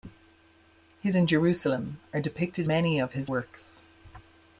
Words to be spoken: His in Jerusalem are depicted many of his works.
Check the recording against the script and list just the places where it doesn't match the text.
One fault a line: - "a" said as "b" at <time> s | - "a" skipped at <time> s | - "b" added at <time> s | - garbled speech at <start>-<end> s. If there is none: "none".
none